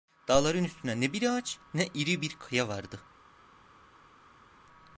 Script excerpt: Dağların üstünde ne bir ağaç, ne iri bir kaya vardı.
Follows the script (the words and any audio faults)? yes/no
yes